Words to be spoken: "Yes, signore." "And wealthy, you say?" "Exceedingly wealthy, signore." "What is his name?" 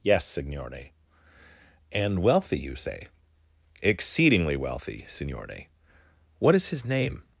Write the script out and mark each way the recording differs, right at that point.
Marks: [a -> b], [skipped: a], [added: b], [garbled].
"Yes, signore." "And wealthy, you say?" "Exceedingly wealthy, signore." "What is his name?"